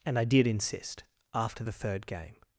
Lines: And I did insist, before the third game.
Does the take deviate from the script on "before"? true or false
true